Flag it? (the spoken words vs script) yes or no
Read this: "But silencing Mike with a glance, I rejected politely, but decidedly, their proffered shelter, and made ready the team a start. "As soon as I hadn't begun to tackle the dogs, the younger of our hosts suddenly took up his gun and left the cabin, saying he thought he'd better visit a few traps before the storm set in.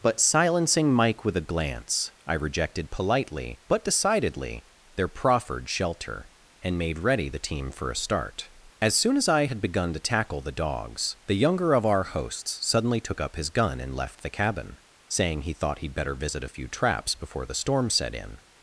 yes